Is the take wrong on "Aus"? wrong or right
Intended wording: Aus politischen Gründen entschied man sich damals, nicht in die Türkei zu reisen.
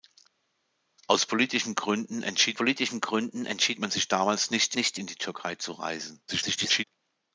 right